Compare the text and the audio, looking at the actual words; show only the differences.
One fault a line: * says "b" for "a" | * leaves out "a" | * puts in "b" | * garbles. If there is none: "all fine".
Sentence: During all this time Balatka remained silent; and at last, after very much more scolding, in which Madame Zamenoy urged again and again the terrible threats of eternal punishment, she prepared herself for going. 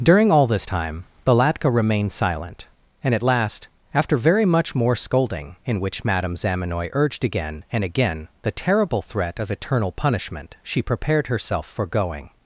* says "threat" for "threats"